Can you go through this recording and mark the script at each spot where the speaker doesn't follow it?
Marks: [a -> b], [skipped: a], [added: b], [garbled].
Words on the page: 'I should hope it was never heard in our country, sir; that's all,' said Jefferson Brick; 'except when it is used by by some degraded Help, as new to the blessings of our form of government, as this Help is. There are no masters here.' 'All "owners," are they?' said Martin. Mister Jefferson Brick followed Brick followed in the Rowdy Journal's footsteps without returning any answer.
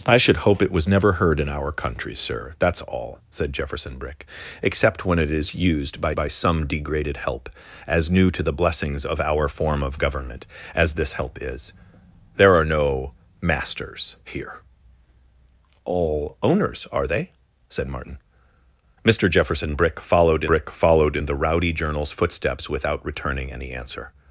'I should hope it was never heard in our country, sir; that's all,' said Jefferson Brick; 'except when it is used by by some degraded Help, as new to the blessings of our form of government, as this Help is. There are no masters here.' 'All "owners," are they?' said Martin. Mister Jefferson Brick followed Brick followed in the Rowdy Journal's footsteps without returning any answer.